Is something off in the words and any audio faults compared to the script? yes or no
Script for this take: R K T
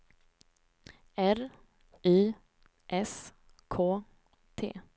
yes